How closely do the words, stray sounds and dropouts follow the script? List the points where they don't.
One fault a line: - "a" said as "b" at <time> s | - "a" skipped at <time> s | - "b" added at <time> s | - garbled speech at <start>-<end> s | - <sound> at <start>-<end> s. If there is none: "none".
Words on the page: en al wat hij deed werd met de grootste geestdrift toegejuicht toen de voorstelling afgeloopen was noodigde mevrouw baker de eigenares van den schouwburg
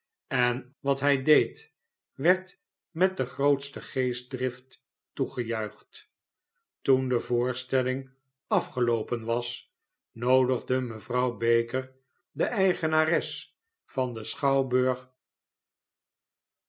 - "al" skipped at 0.7 s